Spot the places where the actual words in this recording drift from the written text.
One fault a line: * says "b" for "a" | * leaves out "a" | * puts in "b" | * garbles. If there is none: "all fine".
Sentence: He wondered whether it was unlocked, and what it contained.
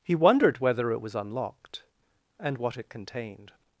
all fine